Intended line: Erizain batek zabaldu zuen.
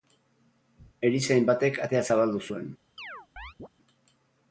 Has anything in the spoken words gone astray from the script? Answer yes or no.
yes